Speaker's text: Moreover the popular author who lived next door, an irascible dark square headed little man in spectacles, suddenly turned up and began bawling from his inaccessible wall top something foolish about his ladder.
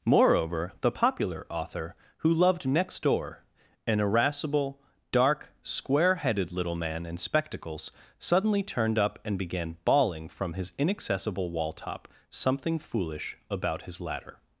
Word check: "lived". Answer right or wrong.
wrong